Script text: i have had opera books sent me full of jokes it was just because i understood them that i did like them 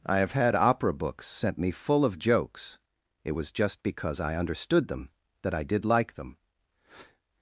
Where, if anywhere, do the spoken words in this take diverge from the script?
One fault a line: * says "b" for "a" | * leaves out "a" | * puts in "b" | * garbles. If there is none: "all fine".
all fine